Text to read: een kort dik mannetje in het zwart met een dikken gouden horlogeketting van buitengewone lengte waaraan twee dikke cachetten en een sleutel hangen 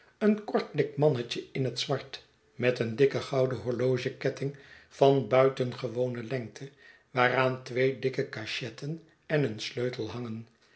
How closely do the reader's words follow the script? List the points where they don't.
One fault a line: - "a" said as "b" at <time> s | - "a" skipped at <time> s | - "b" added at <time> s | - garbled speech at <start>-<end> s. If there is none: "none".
none